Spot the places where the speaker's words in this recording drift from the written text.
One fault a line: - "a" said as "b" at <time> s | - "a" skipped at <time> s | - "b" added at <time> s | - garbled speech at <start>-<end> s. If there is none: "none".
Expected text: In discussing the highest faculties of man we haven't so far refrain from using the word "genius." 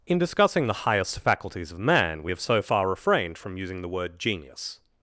- "haven't" said as "have" at 2.3 s
- "refrain" said as "refrained" at 2.9 s